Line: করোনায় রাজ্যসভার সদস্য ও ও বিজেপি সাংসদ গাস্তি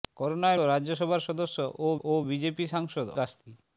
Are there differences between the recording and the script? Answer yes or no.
no